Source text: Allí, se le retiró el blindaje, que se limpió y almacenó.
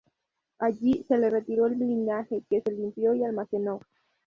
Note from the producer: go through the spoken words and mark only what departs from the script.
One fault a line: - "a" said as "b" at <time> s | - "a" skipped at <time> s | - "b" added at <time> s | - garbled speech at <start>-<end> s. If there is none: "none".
none